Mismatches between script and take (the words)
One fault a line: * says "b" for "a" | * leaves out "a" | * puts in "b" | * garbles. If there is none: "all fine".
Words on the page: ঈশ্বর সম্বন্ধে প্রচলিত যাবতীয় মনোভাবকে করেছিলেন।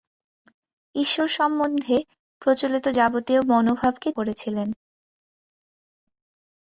all fine